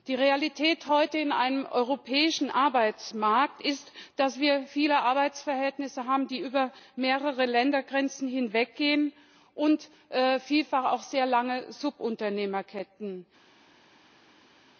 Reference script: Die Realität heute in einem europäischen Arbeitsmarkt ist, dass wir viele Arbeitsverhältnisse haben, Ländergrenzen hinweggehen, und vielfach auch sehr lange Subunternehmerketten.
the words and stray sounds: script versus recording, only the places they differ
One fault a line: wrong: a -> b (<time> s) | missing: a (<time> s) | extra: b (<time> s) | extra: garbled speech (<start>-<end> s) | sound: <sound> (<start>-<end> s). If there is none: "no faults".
extra: die über mehrere (6.2 s)